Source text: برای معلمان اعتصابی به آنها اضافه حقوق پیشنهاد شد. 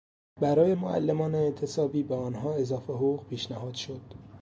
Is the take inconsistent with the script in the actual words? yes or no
no